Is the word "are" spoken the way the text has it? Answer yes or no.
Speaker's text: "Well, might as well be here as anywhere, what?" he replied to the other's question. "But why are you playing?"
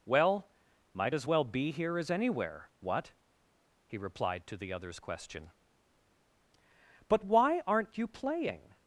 no